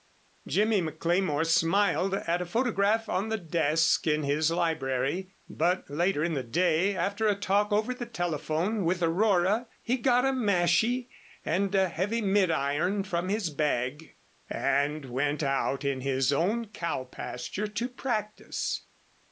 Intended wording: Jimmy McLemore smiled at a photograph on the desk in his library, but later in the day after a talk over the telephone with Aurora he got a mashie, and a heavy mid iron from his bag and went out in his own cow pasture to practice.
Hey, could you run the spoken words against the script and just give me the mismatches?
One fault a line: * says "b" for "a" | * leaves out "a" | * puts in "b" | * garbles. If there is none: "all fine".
all fine